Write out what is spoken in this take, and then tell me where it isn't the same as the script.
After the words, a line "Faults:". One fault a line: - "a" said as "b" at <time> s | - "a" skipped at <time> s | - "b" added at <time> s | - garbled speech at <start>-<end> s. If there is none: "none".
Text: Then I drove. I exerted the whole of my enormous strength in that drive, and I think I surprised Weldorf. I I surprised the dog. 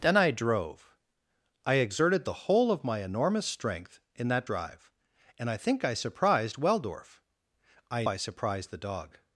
Then I drove. I exerted the whole of my enormous strength in that drive, and I think I surprised Weldorf. I I surprised the dog.
Faults:
none